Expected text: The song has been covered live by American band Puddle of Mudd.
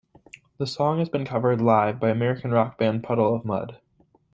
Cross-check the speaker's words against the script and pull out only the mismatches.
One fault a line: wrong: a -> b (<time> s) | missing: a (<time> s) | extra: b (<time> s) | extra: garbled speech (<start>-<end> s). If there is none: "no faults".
extra: rock (2.5 s)